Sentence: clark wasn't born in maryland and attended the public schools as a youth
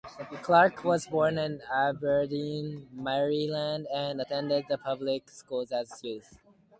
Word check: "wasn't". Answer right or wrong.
wrong